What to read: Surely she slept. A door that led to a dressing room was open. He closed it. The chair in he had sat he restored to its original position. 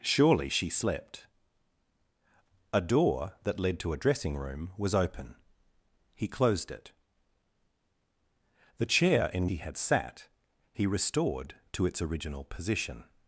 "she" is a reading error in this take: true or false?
false